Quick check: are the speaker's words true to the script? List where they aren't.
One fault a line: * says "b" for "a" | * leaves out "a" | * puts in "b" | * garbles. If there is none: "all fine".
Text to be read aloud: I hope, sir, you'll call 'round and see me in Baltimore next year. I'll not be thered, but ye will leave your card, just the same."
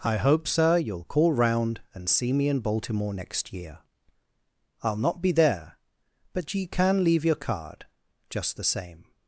* says "there" for "thered"
* says "can" for "will"